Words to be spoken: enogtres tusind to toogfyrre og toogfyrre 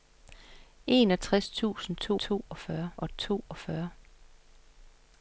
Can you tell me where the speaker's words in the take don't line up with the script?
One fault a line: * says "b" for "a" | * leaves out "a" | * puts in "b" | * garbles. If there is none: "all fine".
all fine